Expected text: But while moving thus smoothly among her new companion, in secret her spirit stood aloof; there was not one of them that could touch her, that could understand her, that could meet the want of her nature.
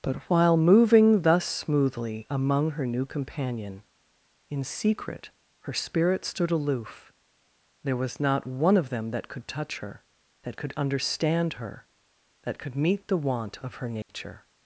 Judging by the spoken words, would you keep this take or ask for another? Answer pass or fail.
pass